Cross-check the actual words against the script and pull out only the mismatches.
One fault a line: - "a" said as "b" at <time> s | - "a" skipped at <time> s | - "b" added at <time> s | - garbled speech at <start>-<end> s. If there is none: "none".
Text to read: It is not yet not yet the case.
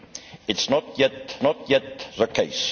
none